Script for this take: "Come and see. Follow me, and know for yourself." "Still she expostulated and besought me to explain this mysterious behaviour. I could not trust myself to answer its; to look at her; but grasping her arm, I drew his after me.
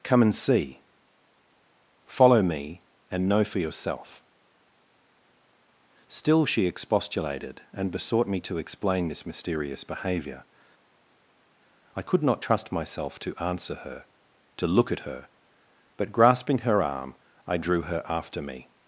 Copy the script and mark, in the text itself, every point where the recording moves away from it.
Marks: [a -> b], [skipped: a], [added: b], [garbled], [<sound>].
"Come and see. Follow me, and know for yourself." "Still she expostulated and besought me to explain this mysterious behaviour. I could not trust myself to answer [its; -> her] to look at her; but grasping her arm, I drew [his -> her] after me.